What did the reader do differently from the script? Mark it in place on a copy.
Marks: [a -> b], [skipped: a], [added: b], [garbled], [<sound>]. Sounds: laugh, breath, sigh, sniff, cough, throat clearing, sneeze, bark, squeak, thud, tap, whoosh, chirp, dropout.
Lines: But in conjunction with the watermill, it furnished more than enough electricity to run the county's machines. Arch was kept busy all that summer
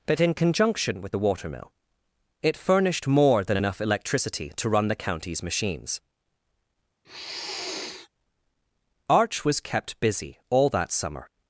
But in conjunction with the watermill, it furnished more than enough electricity to run the county's machines. [sniff] Arch was kept busy all that summer